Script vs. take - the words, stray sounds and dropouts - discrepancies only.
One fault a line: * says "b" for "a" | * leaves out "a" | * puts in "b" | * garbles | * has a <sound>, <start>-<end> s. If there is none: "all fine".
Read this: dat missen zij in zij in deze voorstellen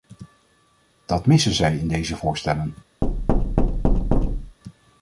* leaves out "zij in"
* has a thud, 3.0-4.6 s